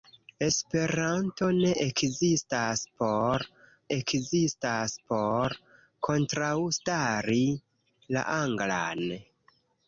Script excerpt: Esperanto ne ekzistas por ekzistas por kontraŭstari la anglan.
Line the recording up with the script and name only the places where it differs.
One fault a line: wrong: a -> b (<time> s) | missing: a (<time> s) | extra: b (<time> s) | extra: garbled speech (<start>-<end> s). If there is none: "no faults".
no faults